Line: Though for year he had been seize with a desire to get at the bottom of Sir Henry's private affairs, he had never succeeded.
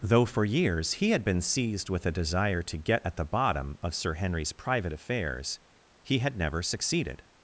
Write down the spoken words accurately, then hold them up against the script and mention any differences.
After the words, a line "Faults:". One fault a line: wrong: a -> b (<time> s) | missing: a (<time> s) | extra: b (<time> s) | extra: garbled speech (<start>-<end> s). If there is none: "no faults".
Though for years he had been seized with a desire to get at the bottom of Sir Henry's private affairs, he had never succeeded.
Faults:
wrong: year -> years (0.4 s)
wrong: seize -> seized (1.4 s)